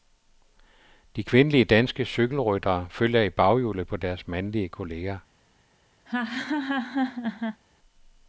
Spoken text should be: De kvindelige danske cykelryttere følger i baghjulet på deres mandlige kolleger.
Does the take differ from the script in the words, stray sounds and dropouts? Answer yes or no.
yes